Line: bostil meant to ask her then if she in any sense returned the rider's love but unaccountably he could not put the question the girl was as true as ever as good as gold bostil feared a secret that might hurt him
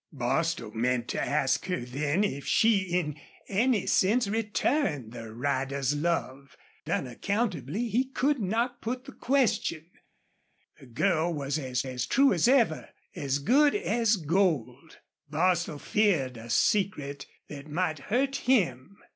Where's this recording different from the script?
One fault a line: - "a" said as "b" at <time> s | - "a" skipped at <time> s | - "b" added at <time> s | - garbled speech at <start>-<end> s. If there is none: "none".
- "but" skipped at 6.6 s
- "as" added at 11.8 s